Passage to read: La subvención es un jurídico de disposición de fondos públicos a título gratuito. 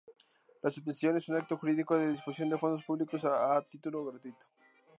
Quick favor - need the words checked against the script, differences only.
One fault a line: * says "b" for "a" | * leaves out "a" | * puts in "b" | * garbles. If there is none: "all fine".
* puts in "acto"